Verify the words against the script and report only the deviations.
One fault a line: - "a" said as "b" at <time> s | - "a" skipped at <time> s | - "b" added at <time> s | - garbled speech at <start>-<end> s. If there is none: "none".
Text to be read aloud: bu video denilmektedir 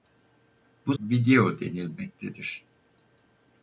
none